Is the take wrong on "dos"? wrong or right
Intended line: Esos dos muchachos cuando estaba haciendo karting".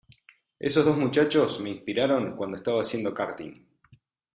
right